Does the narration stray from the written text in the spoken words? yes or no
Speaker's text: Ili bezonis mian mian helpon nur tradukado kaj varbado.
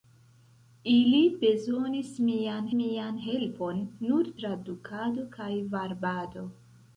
no